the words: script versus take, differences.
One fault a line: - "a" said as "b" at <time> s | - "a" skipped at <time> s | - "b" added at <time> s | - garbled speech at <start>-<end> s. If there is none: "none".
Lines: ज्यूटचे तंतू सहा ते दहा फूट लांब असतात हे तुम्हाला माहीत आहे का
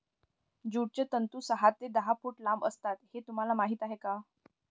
none